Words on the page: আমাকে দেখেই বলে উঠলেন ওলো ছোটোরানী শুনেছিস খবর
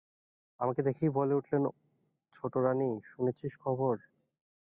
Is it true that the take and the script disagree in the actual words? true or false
true